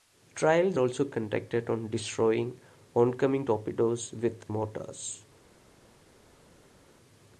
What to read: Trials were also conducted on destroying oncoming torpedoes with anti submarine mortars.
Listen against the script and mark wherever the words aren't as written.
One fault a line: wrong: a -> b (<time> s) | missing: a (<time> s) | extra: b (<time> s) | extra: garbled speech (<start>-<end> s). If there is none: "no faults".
missing: were (0.8 s)
missing: anti submarine (4.4 s)